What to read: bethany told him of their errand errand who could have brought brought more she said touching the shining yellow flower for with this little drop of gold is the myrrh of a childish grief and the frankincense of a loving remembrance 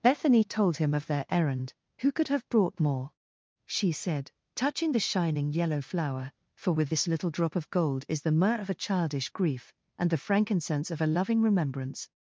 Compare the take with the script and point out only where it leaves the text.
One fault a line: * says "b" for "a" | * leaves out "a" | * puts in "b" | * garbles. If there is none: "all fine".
* leaves out "errand"
* leaves out "brought"